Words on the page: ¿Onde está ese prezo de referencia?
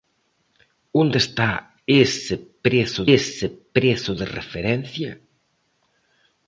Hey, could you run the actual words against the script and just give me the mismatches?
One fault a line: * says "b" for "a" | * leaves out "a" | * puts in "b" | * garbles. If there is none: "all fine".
* puts in "ese prezo"